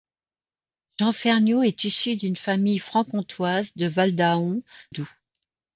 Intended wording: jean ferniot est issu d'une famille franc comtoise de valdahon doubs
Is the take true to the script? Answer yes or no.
yes